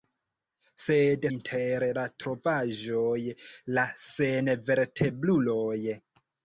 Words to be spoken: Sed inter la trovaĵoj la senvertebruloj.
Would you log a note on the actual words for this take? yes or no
no